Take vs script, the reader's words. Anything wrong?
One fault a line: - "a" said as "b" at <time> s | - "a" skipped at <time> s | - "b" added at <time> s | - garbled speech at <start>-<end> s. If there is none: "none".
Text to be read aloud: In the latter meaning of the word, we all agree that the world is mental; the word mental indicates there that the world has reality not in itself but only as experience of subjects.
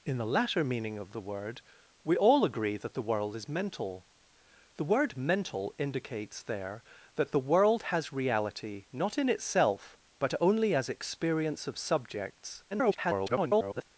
- garbled speech at 12.7-13.8 s